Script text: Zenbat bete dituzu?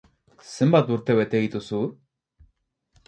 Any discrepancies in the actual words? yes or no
yes